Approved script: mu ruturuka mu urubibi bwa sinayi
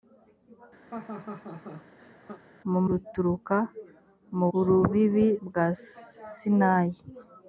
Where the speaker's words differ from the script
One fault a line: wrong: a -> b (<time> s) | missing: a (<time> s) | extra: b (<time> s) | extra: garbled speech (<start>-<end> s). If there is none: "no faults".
no faults